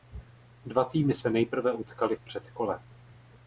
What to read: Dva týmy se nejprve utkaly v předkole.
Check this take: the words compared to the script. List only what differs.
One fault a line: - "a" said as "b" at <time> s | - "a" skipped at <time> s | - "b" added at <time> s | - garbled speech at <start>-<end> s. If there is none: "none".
none